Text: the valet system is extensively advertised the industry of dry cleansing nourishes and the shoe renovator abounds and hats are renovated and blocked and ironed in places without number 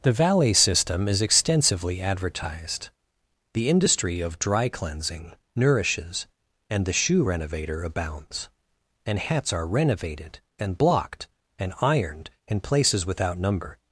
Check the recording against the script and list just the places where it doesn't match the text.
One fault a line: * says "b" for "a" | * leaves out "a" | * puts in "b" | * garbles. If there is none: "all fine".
all fine